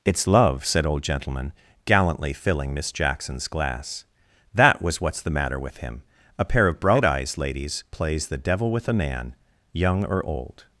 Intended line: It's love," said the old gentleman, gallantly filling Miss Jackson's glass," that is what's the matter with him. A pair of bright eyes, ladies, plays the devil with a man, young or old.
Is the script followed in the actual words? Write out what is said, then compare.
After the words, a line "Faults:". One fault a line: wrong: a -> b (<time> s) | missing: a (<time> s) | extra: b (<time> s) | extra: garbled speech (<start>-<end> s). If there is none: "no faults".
It's love," said old gentleman, gallantly filling Miss Jackson's glass," that was what's the matter with him. A pair of bright eyes, ladies, plays the devil with a man, young or old.
Faults:
missing: the (0.8 s)
wrong: is -> was (4.8 s)